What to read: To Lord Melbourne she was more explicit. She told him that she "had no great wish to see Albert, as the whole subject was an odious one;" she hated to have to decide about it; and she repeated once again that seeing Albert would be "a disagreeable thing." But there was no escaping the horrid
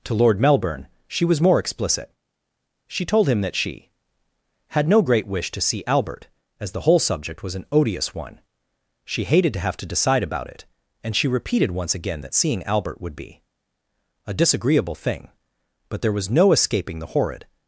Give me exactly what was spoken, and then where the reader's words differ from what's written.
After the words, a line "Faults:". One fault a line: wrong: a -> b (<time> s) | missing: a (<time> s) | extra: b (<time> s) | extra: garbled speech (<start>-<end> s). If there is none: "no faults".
To Lord Melbourne she was more explicit. She told him that she "had no great wish to see Albert, as the whole subject was an odious one;" she hated to have to decide about it; and she repeated once again that seeing Albert would be "a disagreeable thing." But there was no escaping the horrid
Faults:
no faults